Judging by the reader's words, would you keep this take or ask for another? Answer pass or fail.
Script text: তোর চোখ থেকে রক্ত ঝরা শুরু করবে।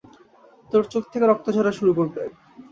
pass